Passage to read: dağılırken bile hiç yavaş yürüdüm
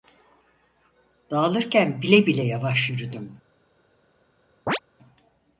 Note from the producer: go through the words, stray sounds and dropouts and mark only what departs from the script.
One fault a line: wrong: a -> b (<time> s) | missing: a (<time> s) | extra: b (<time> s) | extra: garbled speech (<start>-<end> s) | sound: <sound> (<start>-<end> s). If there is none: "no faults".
wrong: hiç -> bile (2.2 s)
sound: chirp (4.7-4.8 s)